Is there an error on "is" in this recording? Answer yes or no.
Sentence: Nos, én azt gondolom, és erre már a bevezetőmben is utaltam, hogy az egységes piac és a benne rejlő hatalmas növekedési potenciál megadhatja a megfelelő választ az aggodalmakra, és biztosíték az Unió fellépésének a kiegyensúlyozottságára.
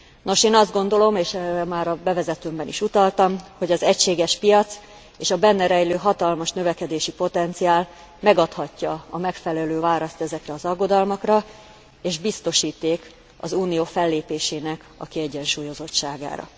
no